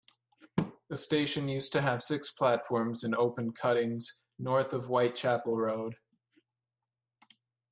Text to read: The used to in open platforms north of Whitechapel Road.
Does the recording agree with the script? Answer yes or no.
no